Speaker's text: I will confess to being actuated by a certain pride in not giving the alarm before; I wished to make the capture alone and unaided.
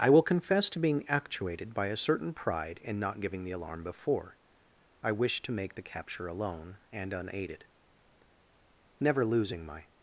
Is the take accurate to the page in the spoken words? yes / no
no